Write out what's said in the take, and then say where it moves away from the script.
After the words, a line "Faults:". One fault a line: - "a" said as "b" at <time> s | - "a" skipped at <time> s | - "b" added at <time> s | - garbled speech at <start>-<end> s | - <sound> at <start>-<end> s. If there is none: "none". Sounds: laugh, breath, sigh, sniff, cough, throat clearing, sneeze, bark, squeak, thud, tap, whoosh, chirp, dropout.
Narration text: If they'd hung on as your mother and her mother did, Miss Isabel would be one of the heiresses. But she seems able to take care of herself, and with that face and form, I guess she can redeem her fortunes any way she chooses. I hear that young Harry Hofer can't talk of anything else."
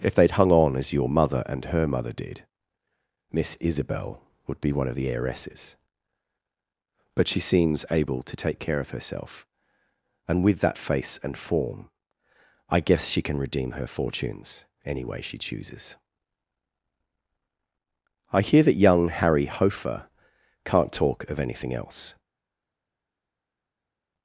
If they'd hung on as your mother and her mother did, Miss Isabel would be one of the heiresses. But she seems able to take care of herself, and with that face and form, I guess she can redeem her fortunes any way she chooses. I hear that young Harry Hofer can't talk of anything else."
Faults:
none